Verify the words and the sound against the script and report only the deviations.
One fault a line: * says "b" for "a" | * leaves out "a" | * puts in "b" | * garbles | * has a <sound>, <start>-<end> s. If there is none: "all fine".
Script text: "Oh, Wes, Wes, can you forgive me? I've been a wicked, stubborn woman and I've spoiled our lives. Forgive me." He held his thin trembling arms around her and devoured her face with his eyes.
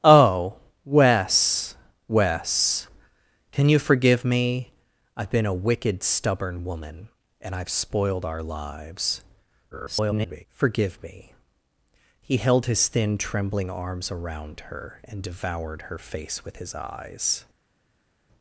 * garbles